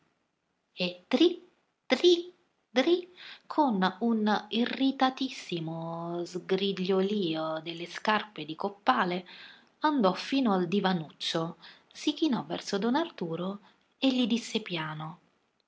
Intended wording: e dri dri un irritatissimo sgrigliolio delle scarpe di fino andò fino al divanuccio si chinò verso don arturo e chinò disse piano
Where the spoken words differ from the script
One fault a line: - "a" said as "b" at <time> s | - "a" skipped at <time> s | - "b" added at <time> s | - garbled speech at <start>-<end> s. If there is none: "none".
- "dri con" added at 2.7 s
- "fino" said as "coppale" at 8.6 s
- "chinò" said as "gli" at 14.1 s